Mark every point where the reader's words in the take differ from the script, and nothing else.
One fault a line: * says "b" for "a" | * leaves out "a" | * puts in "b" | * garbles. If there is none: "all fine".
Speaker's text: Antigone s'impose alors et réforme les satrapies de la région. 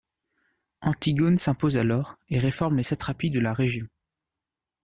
all fine